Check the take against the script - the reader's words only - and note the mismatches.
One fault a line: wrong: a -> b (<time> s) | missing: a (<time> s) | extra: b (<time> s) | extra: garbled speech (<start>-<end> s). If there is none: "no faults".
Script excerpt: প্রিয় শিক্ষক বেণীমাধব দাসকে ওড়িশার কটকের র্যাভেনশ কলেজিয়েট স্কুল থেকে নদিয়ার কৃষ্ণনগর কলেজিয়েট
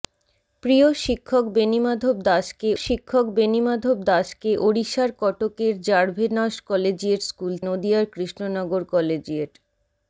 extra: শিক্ষক বেণীমাধব দাসকে (2.8 s)
missing: থেকে (7.5 s)